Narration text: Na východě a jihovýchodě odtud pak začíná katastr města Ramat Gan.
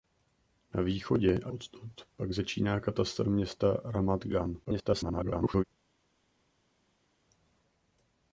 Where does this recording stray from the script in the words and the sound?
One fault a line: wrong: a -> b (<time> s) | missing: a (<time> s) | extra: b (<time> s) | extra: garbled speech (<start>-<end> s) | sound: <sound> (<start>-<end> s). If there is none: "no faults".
missing: jihovýchodě (1.5 s)
extra: garbled speech (4.6-5.6 s)